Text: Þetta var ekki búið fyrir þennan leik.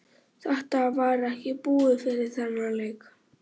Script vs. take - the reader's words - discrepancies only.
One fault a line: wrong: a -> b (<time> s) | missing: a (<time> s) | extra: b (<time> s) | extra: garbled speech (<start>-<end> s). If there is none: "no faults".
no faults